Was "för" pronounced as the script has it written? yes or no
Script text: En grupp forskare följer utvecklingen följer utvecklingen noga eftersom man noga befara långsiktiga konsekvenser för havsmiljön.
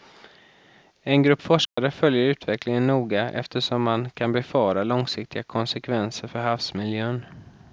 yes